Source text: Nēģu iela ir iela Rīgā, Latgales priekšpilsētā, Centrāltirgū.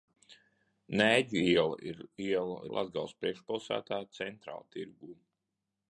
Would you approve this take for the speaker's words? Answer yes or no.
no